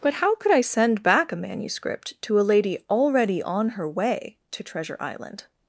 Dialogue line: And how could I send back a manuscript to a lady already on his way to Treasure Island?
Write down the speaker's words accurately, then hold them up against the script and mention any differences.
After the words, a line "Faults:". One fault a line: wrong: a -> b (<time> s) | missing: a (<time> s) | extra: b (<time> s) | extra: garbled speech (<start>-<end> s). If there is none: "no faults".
But how could I send back a manuscript to a lady already on her way to Treasure Island?
Faults:
wrong: And -> But (0.0 s)
wrong: his -> her (3.7 s)